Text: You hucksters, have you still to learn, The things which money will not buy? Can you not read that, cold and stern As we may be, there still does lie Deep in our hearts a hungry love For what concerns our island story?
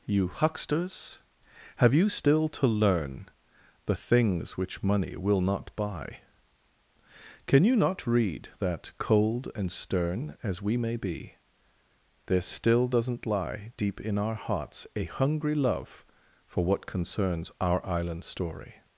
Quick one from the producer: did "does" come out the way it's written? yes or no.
no